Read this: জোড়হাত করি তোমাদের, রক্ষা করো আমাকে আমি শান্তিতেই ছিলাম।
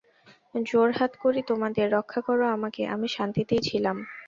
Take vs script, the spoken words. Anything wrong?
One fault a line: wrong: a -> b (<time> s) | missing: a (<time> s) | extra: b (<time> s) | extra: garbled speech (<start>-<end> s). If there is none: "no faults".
no faults